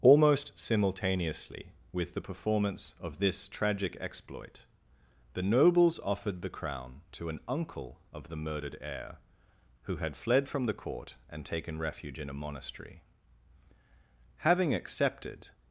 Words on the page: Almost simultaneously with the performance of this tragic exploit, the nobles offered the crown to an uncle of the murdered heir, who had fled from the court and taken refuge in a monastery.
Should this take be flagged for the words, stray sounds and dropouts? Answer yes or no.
yes